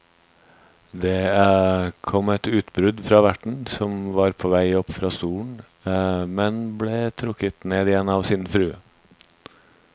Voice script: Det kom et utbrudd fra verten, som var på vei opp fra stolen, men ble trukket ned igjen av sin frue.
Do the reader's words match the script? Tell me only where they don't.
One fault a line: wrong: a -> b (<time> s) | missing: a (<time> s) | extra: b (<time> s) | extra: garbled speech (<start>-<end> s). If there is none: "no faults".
no faults